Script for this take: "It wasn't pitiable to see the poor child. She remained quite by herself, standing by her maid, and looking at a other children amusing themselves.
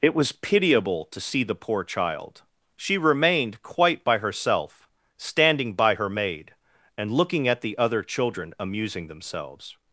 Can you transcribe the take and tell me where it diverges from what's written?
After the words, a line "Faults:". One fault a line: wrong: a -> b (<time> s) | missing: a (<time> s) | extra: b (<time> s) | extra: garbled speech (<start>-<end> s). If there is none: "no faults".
"It was pitiable to see the poor child. She remained quite by herself, standing by her maid, and looking at the other children amusing themselves.
Faults:
wrong: wasn't -> was (0.1 s)
wrong: a -> the (7.6 s)